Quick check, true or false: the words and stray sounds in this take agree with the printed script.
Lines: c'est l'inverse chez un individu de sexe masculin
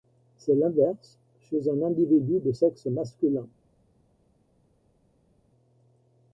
true